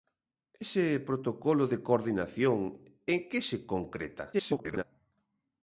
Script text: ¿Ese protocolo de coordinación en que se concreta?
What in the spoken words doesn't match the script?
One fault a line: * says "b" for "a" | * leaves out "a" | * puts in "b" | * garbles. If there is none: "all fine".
* garbles